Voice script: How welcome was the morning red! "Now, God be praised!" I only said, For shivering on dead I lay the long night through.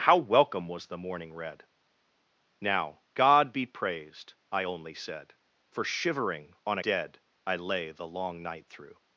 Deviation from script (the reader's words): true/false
false